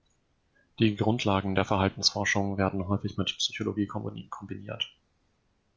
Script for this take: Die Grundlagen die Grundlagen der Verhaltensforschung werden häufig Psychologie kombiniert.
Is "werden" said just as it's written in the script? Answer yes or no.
yes